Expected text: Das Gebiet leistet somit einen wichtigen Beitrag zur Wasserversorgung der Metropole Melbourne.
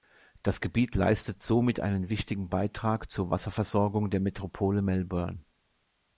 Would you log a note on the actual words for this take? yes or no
no